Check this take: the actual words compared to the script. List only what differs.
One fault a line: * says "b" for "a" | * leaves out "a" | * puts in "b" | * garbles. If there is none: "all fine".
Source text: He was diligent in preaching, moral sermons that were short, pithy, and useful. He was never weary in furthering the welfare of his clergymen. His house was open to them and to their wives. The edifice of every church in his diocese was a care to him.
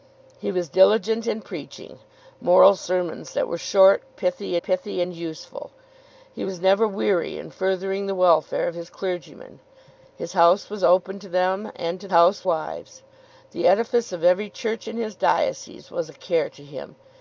* puts in "pithy"
* says "house" for "their"